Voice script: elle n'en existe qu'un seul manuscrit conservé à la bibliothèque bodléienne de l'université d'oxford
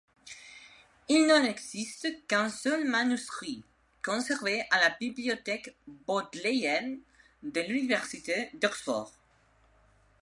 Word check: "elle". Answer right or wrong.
wrong